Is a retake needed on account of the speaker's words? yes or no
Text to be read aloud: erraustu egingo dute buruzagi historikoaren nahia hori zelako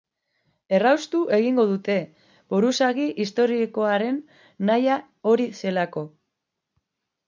no